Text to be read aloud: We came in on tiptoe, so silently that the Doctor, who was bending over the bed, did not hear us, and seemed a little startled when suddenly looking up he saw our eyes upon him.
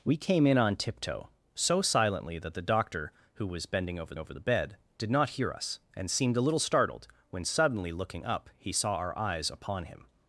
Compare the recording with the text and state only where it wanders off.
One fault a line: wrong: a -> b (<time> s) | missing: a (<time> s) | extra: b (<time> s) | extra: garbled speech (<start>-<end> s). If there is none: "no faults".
extra: over (4.2 s)